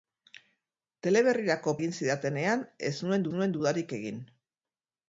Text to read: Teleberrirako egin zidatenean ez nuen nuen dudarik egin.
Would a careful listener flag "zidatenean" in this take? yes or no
no